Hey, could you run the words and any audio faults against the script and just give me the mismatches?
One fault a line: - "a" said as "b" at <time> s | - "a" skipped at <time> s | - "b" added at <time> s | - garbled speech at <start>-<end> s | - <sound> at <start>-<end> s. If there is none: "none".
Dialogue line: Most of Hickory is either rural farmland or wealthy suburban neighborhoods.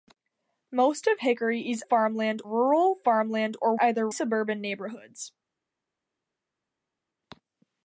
- "either" said as "farmland" at 1.8 s
- "wealthy" said as "either" at 3.8 s